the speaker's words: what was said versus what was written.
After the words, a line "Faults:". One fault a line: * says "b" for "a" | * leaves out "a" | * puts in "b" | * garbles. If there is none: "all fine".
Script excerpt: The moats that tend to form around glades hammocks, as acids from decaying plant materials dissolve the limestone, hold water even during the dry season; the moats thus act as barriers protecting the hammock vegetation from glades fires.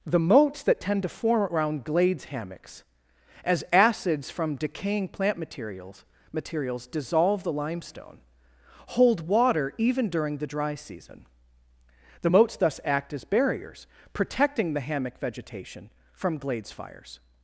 The moats that tend to form around glades hammocks, as acids from decaying plant materials materials dissolve the limestone, hold water even during the dry season; the moats thus act as barriers protecting the hammock vegetation from glades fires.
Faults:
* puts in "materials"